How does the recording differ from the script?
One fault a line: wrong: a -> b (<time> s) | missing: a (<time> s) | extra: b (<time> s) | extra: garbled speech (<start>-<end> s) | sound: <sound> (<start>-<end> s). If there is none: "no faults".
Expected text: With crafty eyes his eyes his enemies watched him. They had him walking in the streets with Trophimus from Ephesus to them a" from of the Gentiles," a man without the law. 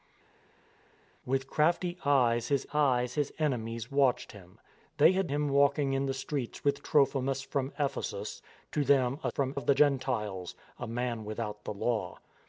no faults